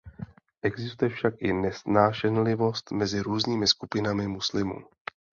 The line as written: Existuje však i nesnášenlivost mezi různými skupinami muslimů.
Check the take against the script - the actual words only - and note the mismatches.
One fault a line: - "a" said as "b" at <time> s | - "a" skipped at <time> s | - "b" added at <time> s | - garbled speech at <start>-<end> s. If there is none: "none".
none